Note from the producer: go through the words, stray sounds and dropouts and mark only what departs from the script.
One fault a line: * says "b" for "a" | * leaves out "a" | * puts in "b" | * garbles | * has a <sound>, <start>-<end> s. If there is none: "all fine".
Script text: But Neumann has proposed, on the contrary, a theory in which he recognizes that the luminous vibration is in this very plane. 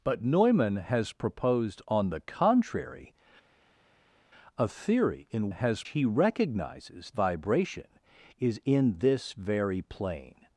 * says "has" for "which"
* leaves out "that the luminous"